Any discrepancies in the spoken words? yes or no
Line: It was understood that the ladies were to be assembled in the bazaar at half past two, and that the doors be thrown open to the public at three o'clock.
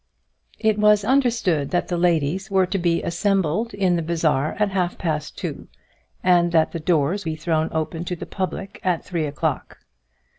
no